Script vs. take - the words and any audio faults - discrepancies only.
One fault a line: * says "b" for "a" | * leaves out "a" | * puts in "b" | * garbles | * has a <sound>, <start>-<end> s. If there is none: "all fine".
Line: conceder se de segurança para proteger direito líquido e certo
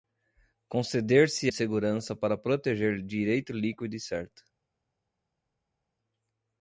all fine